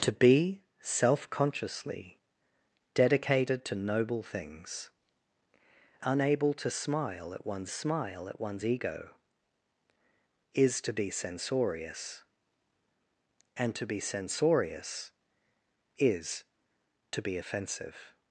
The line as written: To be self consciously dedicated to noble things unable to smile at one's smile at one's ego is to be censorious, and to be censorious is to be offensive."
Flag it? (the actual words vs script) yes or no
no